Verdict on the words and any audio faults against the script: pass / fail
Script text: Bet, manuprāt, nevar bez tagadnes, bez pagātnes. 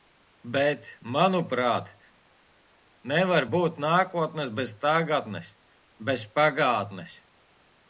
fail